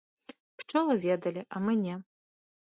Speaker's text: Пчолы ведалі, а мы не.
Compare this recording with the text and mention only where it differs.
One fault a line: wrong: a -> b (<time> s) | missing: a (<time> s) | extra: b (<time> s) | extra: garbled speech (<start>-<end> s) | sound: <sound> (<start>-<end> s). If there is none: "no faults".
no faults